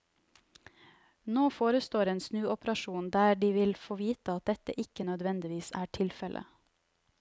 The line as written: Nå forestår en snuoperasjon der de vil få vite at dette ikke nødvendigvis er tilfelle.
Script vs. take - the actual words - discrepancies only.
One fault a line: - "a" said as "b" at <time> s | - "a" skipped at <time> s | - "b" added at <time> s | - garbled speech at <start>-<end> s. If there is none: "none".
none